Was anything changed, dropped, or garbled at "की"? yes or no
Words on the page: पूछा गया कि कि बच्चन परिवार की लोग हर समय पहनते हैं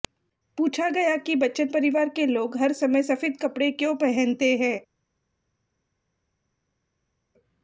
yes